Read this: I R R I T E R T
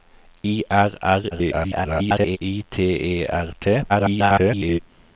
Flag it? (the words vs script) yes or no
yes